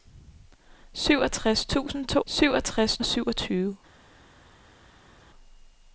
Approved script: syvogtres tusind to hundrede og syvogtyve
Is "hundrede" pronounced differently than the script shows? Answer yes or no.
yes